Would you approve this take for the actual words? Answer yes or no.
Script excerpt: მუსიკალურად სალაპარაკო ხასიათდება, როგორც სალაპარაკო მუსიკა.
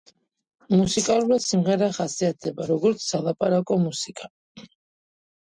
no